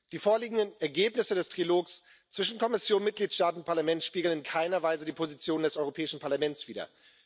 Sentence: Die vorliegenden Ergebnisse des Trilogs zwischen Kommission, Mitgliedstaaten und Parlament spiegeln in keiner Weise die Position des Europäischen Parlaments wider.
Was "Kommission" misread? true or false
false